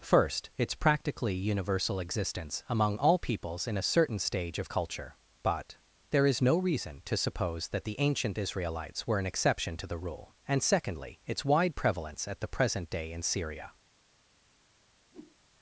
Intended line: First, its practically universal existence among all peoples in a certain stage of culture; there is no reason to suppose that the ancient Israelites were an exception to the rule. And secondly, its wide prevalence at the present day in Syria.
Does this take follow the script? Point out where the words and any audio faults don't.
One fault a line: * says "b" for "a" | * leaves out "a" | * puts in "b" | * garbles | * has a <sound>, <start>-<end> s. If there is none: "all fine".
* puts in "but"
* has a whoosh, 15.1-15.4 s